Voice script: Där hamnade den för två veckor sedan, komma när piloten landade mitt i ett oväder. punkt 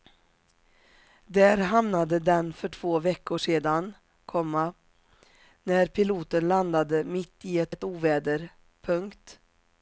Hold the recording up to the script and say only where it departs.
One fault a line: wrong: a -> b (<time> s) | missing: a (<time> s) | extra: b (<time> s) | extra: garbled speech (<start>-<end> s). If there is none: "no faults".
extra: ett (7.7 s)